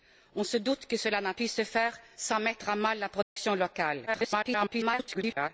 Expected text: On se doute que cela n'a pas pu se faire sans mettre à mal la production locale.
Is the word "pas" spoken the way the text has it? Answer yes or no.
no